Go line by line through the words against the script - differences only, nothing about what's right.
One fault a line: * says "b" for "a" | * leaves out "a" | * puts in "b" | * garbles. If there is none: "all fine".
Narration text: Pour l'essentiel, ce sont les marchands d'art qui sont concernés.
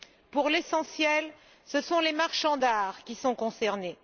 all fine